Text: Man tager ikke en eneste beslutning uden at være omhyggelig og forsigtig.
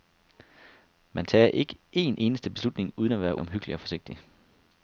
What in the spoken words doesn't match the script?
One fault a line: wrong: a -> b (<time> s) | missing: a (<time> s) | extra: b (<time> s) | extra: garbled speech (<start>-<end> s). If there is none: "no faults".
no faults